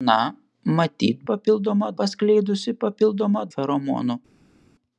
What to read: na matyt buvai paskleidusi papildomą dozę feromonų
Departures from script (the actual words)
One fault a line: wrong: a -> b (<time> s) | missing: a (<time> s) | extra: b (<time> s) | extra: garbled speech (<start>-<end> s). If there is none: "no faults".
wrong: buvai -> papildomą (1.3 s)
missing: dozę (3.4 s)